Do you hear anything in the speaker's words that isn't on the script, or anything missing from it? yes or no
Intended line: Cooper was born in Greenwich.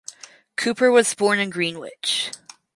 no